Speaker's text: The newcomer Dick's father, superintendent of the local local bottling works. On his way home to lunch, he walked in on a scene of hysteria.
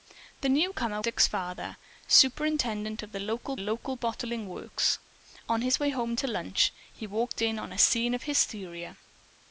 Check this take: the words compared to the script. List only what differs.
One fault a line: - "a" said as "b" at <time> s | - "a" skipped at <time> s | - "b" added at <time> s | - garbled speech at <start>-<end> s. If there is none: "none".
none